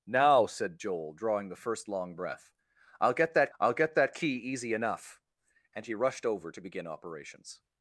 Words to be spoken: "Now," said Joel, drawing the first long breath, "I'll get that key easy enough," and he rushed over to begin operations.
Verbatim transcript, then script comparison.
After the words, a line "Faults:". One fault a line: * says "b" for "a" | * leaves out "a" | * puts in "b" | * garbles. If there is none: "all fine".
"Now," said Joel, drawing the first long breath, "I'll get that I'll get that key easy enough," and he rushed over to begin operations.
Faults:
* puts in "I'll get that"